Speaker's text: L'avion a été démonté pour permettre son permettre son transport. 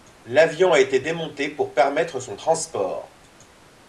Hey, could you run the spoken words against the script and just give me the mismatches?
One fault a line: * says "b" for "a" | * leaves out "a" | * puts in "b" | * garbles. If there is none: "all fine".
* leaves out "permettre son"